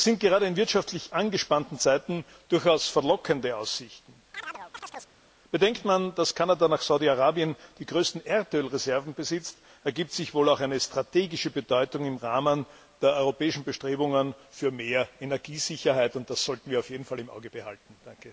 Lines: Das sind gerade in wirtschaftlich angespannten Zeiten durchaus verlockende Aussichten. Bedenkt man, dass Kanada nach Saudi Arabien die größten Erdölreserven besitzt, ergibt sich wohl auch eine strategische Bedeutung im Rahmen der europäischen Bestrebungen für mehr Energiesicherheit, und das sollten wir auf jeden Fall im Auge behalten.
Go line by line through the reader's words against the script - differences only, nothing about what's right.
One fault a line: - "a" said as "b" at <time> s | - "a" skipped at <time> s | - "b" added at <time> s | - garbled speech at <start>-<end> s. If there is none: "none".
none